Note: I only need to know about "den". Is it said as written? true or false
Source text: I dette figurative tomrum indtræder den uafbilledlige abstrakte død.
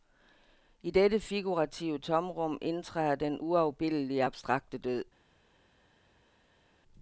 true